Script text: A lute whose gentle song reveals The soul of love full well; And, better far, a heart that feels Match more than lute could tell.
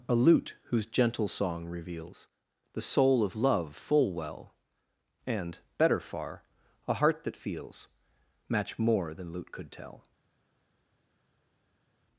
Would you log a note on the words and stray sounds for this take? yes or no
no